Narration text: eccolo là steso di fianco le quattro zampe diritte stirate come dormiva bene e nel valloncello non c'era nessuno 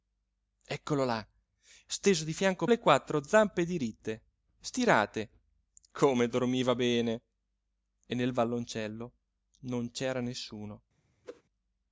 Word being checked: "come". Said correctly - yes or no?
yes